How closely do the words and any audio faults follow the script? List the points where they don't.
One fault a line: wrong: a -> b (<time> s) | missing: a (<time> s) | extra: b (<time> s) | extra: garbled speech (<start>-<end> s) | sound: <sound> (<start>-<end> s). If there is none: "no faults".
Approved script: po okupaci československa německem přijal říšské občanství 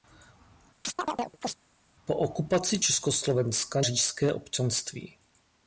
sound: chirp (0.8-1.6 s)
missing: německem přijal (3.8 s)